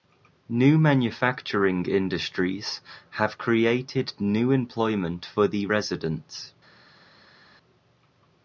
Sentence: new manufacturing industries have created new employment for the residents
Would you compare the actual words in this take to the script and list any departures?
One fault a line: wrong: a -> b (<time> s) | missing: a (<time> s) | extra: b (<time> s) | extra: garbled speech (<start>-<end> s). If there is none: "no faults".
no faults